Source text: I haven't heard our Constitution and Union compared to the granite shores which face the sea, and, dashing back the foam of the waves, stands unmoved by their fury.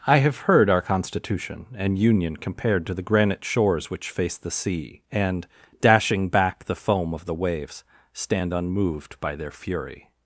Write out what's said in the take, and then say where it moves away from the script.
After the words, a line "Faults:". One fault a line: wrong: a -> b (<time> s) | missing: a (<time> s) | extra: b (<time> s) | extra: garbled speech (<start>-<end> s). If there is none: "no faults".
I have heard our Constitution and Union compared to the granite shores which face the sea, and, dashing back the foam of the waves, stand unmoved by their fury.
Faults:
wrong: haven't -> have (0.2 s)
wrong: stands -> stand (8.1 s)